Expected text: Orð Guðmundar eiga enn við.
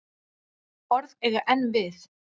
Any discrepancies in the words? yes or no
yes